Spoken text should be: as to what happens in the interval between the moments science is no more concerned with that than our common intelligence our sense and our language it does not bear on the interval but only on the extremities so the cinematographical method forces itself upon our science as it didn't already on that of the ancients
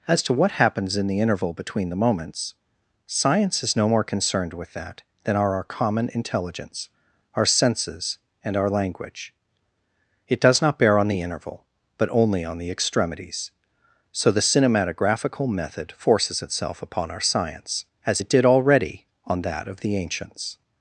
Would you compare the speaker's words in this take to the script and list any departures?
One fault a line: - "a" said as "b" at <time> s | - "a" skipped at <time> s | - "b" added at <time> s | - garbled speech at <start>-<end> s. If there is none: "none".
- "are" added at 5.3 s
- "sense" said as "senses" at 7.5 s
- "didn't" said as "did" at 18.3 s